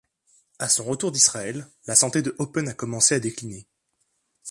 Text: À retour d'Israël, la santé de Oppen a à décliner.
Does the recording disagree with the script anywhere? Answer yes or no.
yes